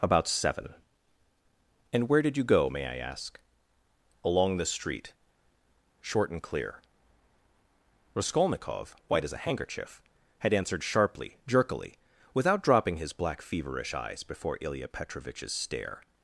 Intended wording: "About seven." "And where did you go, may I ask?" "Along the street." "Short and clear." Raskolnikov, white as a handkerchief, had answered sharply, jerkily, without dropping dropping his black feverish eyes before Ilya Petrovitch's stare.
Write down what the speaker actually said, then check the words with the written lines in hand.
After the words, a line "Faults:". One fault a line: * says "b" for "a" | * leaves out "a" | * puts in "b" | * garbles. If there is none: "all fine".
"About seven." "And where did you go, may I ask?" "Along the street." "Short and clear." Raskolnikov, white as a handkerchief, had answered sharply, jerkily, without dropping his black feverish eyes before Ilya Petrovitch's stare.
Faults:
* leaves out "dropping"